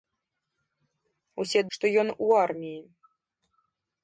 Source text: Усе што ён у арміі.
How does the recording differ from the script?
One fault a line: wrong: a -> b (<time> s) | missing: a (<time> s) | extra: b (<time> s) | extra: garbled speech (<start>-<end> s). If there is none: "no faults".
no faults